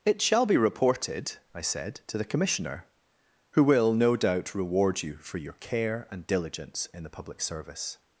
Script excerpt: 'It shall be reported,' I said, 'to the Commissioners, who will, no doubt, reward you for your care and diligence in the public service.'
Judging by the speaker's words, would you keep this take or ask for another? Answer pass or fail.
fail